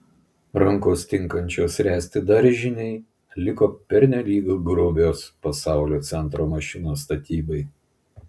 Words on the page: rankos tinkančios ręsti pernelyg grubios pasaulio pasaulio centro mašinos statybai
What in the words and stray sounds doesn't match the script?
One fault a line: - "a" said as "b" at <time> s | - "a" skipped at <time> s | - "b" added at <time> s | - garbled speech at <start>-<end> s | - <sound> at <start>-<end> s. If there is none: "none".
- "daržinei liko" added at 2.3 s
- "pasaulio" skipped at 6.0 s